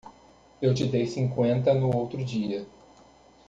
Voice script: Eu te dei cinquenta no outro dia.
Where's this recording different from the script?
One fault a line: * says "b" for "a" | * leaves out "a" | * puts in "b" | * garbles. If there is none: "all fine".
all fine